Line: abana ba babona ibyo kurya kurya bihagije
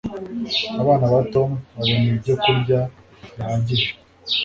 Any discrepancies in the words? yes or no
yes